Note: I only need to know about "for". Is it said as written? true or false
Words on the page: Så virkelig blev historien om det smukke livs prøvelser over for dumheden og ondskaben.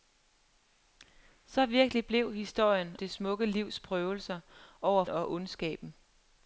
false